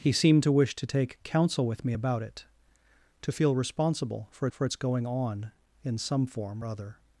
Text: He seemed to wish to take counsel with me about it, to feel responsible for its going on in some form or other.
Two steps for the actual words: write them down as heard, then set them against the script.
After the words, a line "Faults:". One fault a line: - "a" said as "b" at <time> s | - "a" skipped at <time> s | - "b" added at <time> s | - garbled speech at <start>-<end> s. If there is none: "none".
He seemed to wish to take counsel with me about it, to feel responsible for for its going on in some form other.
Faults:
- "for" added at 4.5 s
- "or" skipped at 6.6 s